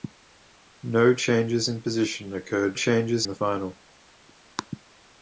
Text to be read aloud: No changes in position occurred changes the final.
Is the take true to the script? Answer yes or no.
yes